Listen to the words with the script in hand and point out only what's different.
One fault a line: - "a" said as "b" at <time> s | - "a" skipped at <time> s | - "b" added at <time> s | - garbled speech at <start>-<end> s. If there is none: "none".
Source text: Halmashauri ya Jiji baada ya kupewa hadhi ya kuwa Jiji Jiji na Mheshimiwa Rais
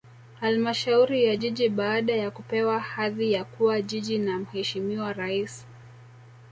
- "Jiji" skipped at 4.2 s